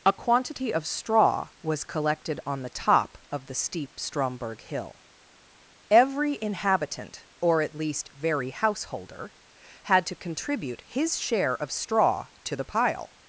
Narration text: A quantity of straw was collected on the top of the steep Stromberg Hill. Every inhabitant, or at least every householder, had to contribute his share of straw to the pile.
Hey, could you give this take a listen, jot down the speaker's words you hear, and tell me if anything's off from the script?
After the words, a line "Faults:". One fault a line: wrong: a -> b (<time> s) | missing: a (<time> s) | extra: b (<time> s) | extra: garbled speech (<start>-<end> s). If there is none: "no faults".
A quantity of straw was collected on the top of the steep Stromberg Hill. Every inhabitant, or at least very householder, had to contribute his share of straw to the pile.
Faults:
wrong: every -> very (8.1 s)